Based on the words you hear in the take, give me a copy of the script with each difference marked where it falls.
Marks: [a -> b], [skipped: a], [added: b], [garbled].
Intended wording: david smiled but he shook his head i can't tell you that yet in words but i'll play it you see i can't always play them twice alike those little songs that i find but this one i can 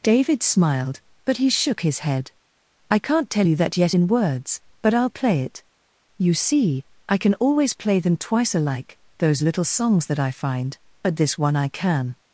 david smiled but he shook his head i can't tell you that yet in words but i'll play it you see i [can't -> can] always play them twice alike those little songs that i find but this one i can